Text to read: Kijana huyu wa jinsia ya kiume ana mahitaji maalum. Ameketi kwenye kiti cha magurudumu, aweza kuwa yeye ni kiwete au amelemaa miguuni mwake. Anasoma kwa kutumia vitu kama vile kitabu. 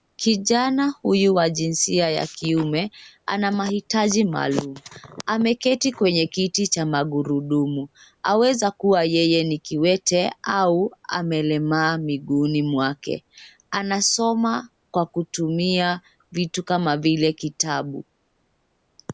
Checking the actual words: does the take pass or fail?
pass